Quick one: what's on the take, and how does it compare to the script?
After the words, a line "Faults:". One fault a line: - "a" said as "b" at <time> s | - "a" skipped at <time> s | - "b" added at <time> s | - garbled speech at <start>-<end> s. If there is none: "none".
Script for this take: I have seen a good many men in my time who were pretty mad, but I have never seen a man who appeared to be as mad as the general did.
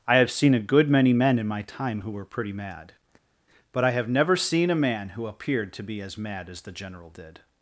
I have seen a good many men in my time who were pretty mad, but I have never seen a man who appeared to be as mad as the general did.
Faults:
none